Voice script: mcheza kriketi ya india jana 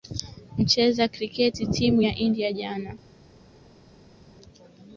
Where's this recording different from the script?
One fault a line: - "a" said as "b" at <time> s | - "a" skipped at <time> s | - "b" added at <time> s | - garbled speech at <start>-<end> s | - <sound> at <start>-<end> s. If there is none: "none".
- "timu" added at 1.6 s